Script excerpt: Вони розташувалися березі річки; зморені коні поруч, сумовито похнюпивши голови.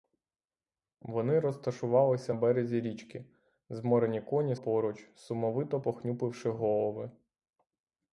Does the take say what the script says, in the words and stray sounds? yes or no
yes